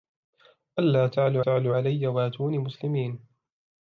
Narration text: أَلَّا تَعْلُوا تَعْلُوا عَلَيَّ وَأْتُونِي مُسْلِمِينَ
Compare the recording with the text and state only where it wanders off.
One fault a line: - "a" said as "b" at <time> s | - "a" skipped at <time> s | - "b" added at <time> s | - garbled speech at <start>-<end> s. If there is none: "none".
none